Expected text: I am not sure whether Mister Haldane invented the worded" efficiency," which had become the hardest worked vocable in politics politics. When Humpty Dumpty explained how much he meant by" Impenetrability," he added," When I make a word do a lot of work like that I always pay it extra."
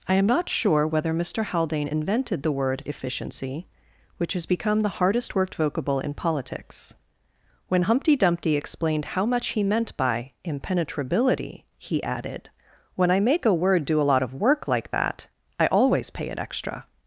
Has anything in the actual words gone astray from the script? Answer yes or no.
yes